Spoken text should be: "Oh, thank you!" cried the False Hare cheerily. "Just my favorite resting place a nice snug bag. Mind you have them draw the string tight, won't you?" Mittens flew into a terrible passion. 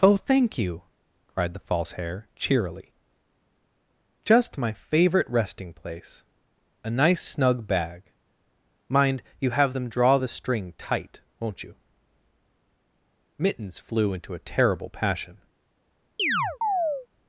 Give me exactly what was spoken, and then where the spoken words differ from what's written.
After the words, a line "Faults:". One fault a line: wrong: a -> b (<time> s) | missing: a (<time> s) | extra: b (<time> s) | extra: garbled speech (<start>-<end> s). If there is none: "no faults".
"Oh, thank you!" cried the False Hare cheerily. "Just my favorite resting place a nice snug bag. Mind you have them draw the string tight, won't you?" Mittens flew into a terrible passion.
Faults:
no faults